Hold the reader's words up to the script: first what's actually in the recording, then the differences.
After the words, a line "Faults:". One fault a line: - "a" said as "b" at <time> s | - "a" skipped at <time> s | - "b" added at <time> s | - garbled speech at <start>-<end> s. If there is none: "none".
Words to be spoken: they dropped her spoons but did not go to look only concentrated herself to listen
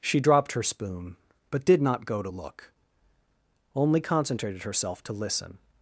she dropped her spoon but did not go to look only concentrated herself to listen
Faults:
- "they" said as "she" at 0.0 s
- "spoons" said as "spoon" at 0.6 s